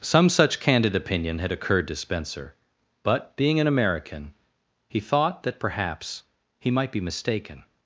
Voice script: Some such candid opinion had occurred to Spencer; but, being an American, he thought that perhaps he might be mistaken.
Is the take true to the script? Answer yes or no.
yes